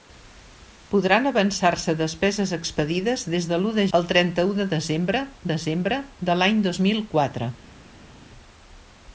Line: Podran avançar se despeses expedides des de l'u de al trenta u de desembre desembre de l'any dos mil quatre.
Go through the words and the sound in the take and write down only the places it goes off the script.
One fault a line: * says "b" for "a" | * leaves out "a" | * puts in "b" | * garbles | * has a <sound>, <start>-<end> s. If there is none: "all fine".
all fine